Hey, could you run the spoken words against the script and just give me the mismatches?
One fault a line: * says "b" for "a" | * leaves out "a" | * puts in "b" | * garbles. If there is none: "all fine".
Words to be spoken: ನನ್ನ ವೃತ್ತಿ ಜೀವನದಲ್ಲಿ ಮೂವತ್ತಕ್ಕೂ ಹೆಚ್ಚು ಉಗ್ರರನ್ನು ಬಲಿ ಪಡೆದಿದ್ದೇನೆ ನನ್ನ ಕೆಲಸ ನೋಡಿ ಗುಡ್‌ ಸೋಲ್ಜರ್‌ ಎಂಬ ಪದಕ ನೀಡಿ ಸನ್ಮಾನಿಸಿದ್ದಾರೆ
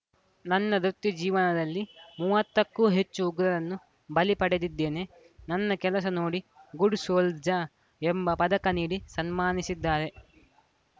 all fine